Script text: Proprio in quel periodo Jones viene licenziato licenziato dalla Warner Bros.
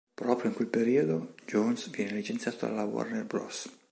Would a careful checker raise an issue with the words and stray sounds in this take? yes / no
yes